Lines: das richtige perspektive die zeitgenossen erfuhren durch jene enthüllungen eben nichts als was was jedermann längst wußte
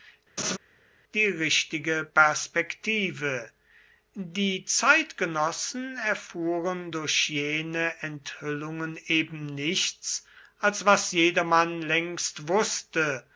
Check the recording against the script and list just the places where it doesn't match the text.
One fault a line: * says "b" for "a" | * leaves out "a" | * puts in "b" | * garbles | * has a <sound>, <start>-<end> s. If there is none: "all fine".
* has a laugh, 0.4-0.6 s
* says "die" for "das"
* leaves out "was"